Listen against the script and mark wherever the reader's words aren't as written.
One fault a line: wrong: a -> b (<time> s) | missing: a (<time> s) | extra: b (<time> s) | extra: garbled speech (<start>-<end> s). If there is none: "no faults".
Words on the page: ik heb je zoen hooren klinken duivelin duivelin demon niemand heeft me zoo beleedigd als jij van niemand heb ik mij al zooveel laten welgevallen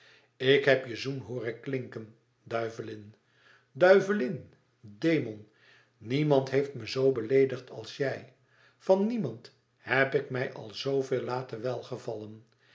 no faults